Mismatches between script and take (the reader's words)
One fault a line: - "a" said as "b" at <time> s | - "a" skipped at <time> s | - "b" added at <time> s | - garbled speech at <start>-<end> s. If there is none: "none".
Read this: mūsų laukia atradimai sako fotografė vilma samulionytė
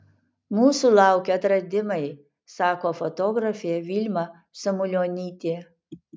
none